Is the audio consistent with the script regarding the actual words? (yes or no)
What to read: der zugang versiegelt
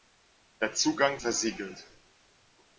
yes